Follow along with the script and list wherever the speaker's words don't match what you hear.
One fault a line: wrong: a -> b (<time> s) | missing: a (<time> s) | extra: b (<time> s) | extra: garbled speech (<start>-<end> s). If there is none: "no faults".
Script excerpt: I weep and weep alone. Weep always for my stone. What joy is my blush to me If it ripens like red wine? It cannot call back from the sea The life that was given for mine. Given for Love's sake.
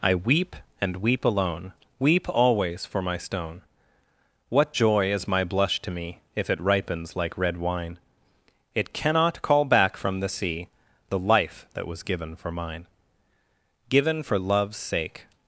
no faults